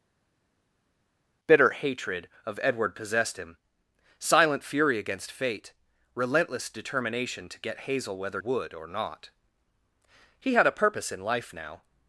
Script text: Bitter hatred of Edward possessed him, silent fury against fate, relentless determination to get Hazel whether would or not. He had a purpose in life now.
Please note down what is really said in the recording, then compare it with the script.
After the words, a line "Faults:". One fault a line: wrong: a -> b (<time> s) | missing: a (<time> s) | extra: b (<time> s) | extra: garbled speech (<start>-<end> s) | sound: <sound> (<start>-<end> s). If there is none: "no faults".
Bitter hatred of Edward possessed him, silent fury against fate, relentless determination to get Hazel whether would or not. He had a purpose in life now.
Faults:
no faults